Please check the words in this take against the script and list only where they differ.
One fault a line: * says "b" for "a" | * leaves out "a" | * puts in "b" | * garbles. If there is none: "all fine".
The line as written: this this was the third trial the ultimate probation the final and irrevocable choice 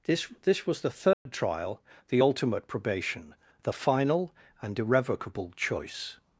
all fine